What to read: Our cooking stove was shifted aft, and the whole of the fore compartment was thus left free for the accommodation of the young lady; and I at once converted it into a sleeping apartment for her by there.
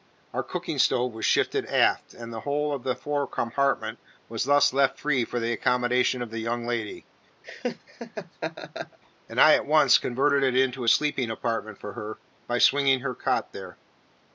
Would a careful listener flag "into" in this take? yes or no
no